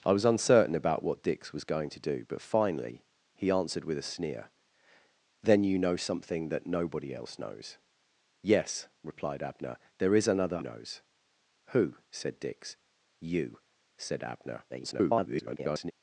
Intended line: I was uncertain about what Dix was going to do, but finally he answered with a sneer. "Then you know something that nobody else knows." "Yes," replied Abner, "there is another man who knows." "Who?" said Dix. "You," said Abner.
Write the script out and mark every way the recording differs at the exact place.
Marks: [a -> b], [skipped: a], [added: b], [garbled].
I was uncertain about what Dix was going to do, but finally he answered with a sneer. "Then you know something that nobody else knows." "Yes," replied Abner, "there is another [skipped: man who] knows." "Who?" said Dix. "You," said Abner. [garbled]